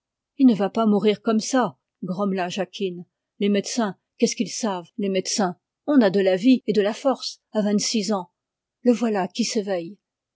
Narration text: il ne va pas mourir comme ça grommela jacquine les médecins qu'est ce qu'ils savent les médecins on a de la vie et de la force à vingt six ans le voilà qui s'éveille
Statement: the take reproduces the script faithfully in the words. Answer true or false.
true